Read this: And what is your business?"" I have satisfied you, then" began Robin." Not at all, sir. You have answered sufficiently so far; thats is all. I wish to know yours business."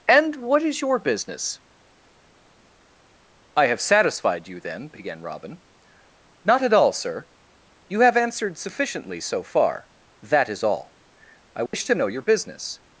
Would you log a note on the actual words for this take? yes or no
yes